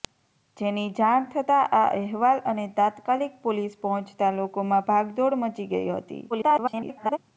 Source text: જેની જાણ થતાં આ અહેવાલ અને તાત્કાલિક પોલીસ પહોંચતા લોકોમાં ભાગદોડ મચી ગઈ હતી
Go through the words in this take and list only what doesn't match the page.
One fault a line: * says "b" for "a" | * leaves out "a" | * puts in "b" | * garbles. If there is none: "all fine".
* garbles